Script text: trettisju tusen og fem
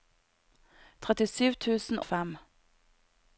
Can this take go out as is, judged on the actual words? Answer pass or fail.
pass